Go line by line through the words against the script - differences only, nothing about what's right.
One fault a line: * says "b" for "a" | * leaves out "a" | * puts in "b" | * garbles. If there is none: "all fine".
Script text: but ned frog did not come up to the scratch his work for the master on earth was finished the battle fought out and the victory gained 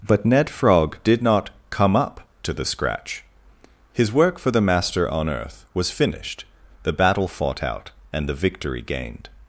all fine